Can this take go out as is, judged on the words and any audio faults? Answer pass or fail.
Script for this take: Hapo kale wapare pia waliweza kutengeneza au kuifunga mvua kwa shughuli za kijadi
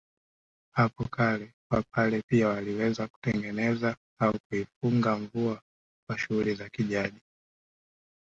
pass